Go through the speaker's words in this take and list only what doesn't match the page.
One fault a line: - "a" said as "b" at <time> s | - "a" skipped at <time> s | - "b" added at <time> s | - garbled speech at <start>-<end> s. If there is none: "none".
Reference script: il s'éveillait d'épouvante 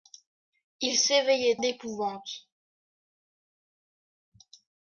none